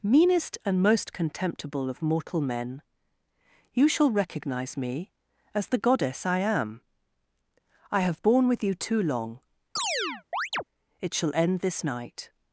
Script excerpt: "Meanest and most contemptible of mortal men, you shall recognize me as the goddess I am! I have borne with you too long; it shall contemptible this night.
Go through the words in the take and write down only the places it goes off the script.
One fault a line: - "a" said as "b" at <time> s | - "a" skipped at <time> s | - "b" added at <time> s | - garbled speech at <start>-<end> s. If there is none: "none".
- "contemptible" said as "end" at 11.3 s